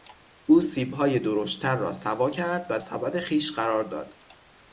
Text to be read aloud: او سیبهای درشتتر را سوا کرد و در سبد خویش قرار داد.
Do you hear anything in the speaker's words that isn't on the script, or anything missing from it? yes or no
yes